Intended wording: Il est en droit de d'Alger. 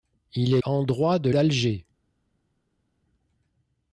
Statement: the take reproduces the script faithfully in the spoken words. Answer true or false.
true